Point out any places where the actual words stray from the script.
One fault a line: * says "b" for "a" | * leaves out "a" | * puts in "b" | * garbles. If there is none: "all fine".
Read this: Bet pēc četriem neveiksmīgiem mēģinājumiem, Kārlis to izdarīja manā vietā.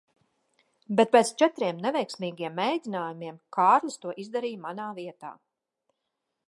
all fine